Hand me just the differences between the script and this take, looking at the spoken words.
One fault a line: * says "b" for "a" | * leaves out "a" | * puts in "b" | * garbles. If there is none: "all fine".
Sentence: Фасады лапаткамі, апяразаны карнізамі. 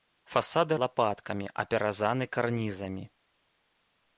all fine